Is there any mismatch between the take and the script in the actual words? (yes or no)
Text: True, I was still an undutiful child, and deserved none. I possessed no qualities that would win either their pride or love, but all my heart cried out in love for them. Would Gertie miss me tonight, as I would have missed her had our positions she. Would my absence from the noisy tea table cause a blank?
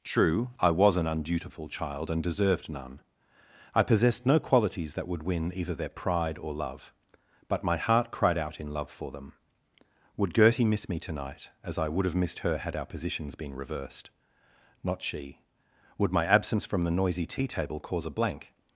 yes